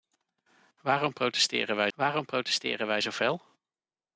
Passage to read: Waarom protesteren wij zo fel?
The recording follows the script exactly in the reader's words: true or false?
false